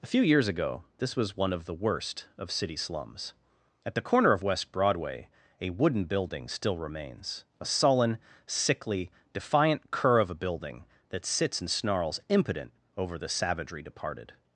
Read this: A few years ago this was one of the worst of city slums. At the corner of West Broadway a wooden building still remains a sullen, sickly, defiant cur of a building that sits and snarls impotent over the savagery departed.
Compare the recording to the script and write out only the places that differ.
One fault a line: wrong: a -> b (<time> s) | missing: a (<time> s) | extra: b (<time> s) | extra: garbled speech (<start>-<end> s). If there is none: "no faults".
no faults